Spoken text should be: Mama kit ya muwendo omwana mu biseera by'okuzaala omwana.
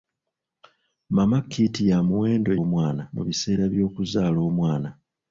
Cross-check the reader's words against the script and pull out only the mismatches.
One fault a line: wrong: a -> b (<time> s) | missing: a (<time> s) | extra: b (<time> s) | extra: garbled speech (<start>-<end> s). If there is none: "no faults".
no faults